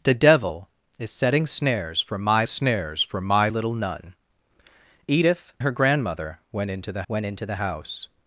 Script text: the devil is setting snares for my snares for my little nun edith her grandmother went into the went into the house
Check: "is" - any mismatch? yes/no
no